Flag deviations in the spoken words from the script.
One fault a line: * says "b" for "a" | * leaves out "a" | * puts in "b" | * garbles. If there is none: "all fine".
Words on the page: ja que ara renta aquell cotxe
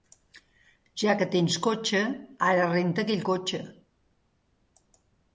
* puts in "tens cotxe"